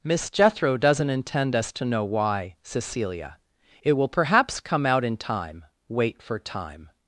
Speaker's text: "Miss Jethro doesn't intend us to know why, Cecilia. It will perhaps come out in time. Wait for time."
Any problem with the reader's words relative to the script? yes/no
no